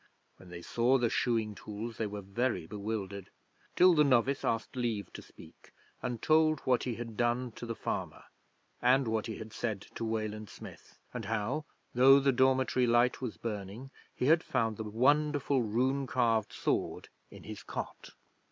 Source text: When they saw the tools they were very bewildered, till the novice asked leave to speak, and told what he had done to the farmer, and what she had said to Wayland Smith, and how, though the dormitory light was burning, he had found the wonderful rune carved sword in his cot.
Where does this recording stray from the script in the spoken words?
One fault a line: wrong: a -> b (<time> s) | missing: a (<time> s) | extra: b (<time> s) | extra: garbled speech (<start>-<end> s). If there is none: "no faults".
extra: shoeing (1.1 s)
wrong: she -> he (9.3 s)